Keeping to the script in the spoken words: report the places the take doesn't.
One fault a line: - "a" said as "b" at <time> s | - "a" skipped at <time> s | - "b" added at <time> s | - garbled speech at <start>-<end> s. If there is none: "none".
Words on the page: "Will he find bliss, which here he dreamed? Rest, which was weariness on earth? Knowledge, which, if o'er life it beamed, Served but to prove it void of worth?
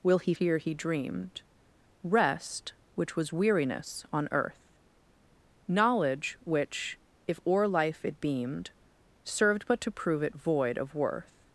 - "find bliss which" skipped at 0.3 s